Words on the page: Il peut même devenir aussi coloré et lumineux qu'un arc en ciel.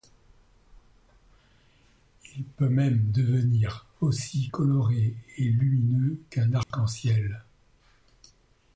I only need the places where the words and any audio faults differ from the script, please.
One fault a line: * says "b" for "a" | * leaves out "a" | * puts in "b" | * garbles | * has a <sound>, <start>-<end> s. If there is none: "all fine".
* has a dropout, 6.6-6.7 s